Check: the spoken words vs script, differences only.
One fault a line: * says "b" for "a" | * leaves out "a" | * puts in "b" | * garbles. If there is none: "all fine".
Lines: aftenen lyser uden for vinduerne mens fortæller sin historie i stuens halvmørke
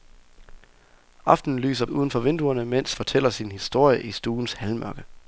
all fine